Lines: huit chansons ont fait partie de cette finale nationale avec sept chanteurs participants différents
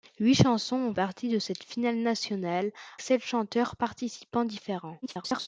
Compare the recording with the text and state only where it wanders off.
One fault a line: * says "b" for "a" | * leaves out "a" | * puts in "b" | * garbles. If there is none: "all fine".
* leaves out "fait"
* leaves out "avec"
* garbles